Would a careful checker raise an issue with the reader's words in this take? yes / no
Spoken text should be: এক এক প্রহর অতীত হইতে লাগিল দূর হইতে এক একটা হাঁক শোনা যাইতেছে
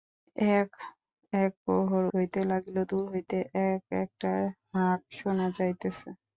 yes